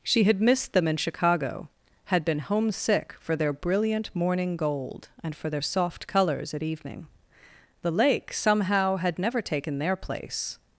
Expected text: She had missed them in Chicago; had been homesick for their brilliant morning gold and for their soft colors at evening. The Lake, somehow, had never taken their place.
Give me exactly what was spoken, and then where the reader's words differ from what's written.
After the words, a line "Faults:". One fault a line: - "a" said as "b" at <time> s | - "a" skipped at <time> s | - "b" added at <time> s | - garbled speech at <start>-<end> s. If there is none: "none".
She had missed them in Chicago; had been homesick for their brilliant morning gold and for their soft colors at evening. The Lake, somehow, had never taken their place.
Faults:
none